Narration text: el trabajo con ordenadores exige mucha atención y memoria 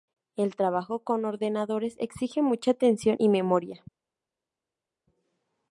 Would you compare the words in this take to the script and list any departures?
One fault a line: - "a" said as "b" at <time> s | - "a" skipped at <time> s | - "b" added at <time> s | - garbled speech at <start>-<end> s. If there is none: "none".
none